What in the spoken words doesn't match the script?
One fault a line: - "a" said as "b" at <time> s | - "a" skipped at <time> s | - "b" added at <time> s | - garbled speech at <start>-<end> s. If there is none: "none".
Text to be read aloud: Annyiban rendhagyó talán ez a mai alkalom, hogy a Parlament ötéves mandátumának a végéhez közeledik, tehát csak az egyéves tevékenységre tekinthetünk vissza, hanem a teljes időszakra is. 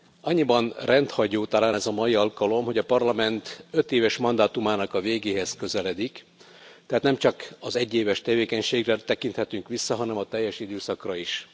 - "nem" added at 7.0 s